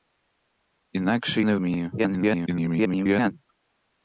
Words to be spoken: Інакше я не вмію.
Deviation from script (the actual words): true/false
true